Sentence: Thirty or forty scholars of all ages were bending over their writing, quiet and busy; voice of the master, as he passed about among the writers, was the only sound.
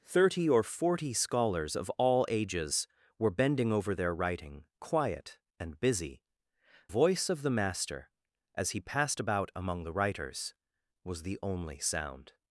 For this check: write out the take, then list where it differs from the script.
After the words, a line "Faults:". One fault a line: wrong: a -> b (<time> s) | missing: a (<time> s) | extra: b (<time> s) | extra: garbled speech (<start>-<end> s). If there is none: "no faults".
Thirty or forty scholars of all ages were bending over their writing, quiet and busy; voice of the master, as he passed about among the writers, was the only sound.
Faults:
no faults